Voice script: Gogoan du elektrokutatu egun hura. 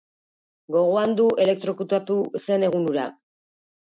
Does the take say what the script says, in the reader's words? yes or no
no